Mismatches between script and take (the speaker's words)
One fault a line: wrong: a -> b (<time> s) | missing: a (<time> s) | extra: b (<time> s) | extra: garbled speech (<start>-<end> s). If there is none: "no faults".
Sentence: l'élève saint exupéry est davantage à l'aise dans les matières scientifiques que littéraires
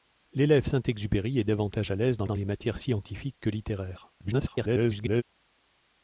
extra: dans (2.2 s)
extra: garbled speech (4.2-5.2 s)